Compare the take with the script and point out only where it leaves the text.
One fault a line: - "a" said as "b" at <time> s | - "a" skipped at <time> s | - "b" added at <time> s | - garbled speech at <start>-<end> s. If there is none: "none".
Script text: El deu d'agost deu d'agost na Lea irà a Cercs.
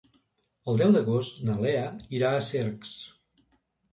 - "deu d'agost" skipped at 1.4 s